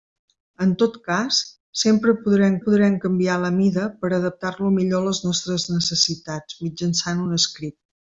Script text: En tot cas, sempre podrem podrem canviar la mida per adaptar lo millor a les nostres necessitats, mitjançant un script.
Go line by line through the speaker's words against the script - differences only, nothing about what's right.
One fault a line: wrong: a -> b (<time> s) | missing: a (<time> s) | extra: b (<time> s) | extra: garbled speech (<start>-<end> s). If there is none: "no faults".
no faults